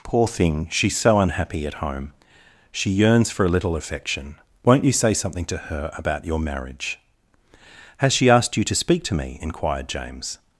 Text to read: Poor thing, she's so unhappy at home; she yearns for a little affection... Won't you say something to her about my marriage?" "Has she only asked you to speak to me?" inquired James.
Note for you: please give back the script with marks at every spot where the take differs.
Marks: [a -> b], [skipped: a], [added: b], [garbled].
Poor thing, she's so unhappy at home; she yearns for a little affection... Won't you say something to her about [my -> your] marriage?" "Has she [skipped: only] asked you to speak to me?" inquired James.